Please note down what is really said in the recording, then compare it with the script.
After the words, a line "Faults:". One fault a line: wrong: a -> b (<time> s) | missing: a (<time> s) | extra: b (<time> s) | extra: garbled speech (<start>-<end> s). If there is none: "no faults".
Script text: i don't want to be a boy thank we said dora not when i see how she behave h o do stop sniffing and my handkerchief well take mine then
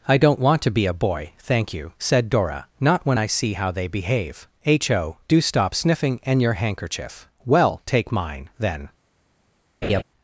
i don't want to be a boy thank you said dora not when i see how they behave h o do stop sniffing and your handkerchief well take mine then
Faults:
wrong: we -> you (1.8 s)
wrong: she -> they (3.7 s)
wrong: my -> your (6.4 s)